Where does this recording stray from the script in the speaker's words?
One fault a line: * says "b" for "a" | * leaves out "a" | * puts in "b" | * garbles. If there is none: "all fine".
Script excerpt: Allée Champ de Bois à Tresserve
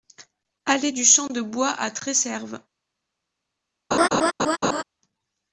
* puts in "du"